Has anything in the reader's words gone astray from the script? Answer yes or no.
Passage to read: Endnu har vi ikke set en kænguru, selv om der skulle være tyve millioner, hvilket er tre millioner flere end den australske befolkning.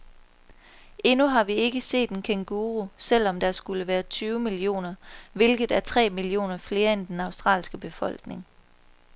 no